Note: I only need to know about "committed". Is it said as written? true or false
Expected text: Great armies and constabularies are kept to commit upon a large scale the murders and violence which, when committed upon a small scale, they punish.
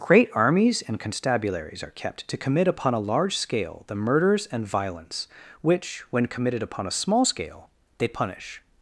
true